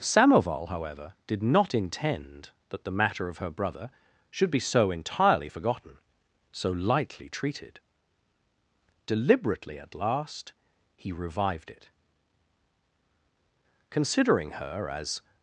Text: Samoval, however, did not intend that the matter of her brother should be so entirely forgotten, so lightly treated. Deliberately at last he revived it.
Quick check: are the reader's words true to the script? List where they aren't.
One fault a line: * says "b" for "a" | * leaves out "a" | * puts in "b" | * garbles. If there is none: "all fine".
* puts in "Considering her as"